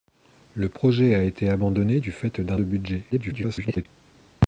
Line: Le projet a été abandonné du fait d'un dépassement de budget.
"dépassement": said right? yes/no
no